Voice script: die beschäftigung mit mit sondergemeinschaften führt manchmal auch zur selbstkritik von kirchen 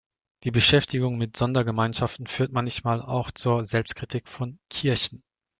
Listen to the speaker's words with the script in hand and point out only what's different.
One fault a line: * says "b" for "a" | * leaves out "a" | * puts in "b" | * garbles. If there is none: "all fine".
* leaves out "mit"